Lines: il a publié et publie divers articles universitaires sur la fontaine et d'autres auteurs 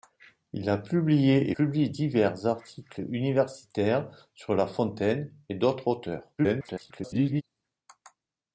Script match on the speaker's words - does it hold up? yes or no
no